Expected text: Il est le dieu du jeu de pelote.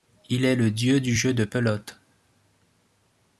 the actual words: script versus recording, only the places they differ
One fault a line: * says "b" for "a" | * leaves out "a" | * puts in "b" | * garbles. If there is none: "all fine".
all fine